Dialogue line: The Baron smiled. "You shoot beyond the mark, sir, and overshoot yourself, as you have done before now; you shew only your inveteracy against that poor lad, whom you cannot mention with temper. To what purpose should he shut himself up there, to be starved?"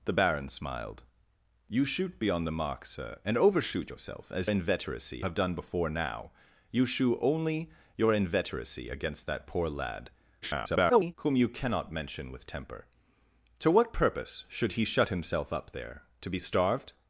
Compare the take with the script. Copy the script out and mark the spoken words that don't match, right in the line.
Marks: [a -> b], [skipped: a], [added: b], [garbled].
The Baron smiled. "You shoot beyond the mark, sir, and overshoot yourself, as [you -> inveteracy] have done before now; you shew only your inveteracy against that poor lad, [garbled] whom you cannot mention with temper. To what purpose should he shut himself up there, to be starved?"